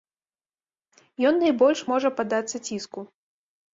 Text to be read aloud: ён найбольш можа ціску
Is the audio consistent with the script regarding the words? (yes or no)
no